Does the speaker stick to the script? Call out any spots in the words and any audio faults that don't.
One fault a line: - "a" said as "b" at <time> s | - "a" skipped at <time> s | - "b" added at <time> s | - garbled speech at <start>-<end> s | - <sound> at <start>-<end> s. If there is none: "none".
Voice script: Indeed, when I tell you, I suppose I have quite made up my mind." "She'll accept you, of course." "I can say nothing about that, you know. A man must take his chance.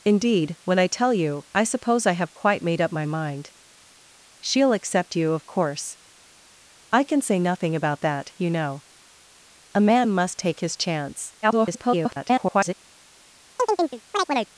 - garbled speech at 11.4-12.7 s
- chirp at 13.6-14.5 s